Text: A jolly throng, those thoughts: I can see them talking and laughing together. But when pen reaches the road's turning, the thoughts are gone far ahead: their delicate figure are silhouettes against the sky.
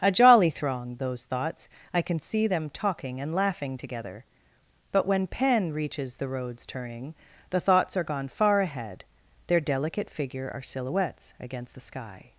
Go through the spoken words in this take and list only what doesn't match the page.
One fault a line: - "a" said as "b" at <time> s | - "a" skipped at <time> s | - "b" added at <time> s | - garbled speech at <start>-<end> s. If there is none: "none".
none